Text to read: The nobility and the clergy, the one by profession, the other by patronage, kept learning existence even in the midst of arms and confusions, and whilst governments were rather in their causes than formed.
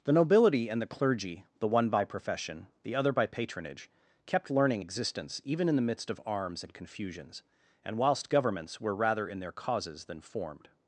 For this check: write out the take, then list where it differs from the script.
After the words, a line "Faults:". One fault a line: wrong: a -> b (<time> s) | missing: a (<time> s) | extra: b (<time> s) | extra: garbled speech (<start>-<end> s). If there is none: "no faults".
The nobility and the clergy, the one by profession, the other by patronage, kept learning existence even in the midst of arms and confusions, and whilst governments were rather in their causes than formed.
Faults:
no faults